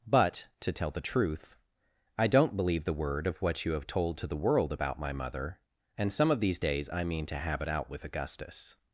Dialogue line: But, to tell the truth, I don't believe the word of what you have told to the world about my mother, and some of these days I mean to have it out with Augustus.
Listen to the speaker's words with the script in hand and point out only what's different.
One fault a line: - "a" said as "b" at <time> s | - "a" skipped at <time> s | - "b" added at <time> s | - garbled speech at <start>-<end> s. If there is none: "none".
none